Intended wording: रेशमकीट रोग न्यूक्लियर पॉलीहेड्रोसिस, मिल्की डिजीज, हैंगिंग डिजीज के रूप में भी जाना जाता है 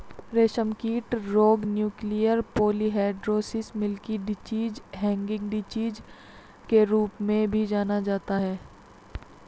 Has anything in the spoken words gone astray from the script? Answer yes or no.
no